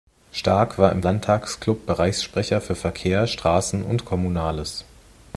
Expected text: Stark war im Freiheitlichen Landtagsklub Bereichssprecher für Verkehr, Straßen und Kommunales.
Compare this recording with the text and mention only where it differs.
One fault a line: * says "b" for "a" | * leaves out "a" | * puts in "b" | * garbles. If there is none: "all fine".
* leaves out "Freiheitlichen"